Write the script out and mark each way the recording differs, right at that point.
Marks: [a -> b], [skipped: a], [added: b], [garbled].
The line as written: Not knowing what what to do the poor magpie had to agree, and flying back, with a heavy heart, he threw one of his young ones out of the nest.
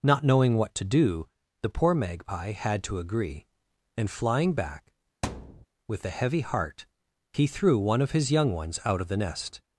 Not knowing what [skipped: what] to do the poor magpie had to agree, and flying back, with a heavy heart, he threw one of his young ones out of the nest.